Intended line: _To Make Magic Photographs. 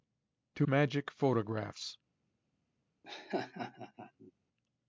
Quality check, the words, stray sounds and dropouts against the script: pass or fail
fail